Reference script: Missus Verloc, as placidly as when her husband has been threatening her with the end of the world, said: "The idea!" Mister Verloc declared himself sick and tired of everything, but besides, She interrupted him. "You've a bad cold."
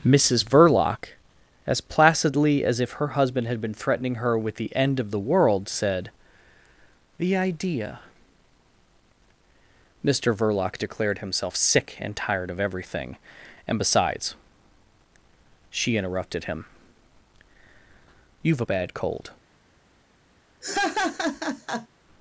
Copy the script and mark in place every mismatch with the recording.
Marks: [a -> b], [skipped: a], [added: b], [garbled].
Missus Verloc, as placidly as [when -> if] her husband [has -> had] been threatening her with the end of the world, said: "The idea!" Mister Verloc declared himself sick and tired of everything, [but -> and] besides, She interrupted him. "You've a bad cold."